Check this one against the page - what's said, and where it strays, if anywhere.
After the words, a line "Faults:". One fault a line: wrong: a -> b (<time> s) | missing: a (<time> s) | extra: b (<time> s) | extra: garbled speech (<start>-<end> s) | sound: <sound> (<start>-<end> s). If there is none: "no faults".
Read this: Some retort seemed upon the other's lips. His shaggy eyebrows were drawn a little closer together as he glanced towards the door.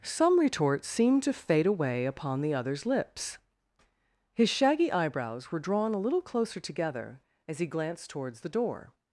Some retort seemed to fade away upon the other's lips. His shaggy eyebrows were drawn a little closer together as he glanced towards the door.
Faults:
extra: to fade away (1.2 s)